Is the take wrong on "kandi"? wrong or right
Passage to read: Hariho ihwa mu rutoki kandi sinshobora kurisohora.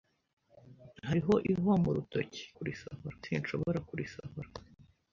wrong